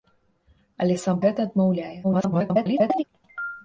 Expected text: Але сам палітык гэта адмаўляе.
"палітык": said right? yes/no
no